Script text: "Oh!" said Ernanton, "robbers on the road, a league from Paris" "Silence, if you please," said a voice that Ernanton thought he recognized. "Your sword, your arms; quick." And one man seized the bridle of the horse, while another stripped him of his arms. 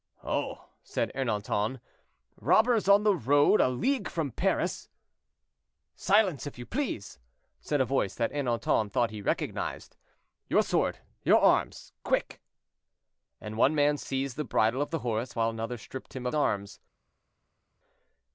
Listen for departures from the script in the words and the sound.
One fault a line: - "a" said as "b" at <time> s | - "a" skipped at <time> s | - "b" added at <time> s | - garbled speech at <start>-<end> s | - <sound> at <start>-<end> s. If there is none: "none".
- "his" skipped at 16.3 s